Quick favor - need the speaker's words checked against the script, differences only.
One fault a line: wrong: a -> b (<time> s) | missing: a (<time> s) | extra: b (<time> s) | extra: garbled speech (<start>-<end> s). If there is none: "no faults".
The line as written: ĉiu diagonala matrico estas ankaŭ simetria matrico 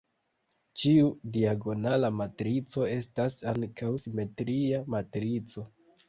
no faults